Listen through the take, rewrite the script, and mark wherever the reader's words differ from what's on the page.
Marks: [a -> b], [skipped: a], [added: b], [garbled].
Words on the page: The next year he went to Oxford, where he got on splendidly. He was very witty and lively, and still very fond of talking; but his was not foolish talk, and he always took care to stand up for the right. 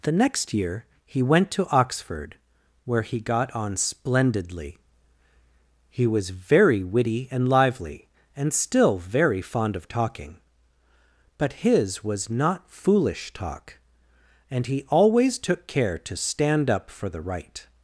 The next year he went to Oxford, where he got on splendidly. He was very witty and lively, and still very fond of talking; but his was not foolish talk, and he always took care to stand up for the right.